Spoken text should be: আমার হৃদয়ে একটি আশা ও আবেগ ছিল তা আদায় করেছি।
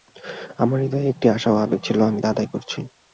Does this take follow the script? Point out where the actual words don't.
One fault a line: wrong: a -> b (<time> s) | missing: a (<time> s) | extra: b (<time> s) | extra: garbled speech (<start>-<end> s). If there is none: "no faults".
extra: আমি (2.0 s)